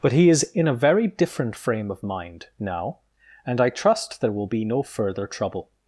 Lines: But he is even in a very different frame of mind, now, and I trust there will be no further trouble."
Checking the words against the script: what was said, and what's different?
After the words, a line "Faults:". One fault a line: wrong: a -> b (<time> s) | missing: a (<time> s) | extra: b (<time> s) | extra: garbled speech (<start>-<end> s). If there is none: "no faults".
But he is in a very different frame of mind, now, and I trust there will be no further trouble."
Faults:
missing: even (0.4 s)